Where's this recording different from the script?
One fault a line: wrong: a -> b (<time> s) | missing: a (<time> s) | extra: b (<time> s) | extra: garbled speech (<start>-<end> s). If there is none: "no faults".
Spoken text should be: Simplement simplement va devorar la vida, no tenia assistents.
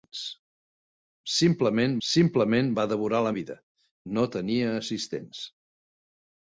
no faults